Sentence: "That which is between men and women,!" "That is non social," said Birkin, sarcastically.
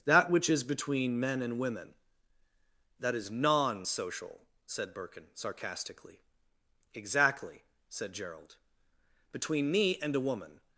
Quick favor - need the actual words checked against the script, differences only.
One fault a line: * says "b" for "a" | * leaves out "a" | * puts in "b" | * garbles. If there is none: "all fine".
* puts in "Exactly said Gerald Between me and a woman"